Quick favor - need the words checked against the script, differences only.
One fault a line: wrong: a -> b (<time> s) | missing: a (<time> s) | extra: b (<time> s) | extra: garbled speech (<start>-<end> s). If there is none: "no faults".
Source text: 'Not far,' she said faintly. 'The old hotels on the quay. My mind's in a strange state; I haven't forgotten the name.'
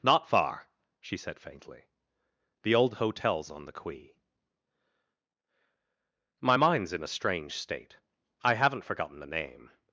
no faults